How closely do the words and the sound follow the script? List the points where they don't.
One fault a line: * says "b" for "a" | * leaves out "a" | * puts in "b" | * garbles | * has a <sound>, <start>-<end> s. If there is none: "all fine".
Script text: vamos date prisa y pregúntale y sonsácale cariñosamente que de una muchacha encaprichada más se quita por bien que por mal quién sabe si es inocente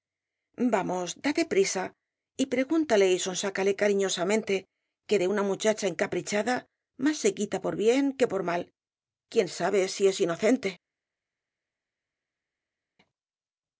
all fine